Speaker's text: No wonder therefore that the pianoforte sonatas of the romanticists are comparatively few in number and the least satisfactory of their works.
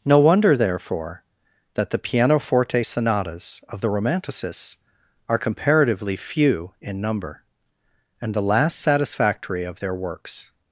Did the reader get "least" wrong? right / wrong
wrong